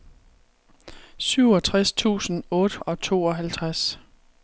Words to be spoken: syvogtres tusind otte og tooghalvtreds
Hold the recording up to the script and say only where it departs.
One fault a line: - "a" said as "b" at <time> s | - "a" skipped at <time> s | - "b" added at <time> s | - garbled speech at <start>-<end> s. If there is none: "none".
none